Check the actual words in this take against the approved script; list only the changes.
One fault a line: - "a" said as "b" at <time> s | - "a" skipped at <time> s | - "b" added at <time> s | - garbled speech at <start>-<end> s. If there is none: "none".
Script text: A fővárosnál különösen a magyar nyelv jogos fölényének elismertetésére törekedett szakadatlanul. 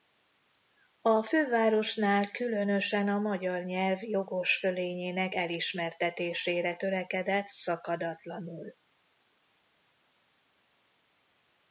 none